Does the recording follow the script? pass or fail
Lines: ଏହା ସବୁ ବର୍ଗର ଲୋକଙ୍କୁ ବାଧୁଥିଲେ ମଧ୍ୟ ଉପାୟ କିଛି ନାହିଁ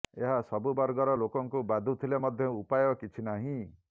pass